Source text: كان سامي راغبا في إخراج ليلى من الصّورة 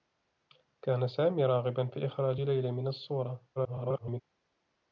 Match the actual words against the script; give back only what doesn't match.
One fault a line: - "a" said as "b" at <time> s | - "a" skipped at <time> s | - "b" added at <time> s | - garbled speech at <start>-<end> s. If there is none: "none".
- garbled speech at 3.6-4.2 s